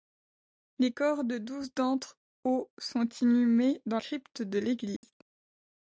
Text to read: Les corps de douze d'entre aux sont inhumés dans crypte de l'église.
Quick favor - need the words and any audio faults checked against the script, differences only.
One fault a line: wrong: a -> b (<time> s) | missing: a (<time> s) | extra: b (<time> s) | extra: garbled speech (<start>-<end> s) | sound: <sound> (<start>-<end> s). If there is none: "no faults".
sound: dropout (5.0-5.0 s)